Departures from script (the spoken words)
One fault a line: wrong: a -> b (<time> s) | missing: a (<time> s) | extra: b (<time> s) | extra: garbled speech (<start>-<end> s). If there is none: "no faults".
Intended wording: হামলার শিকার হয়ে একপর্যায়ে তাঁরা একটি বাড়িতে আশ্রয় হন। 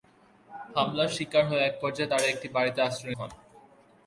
no faults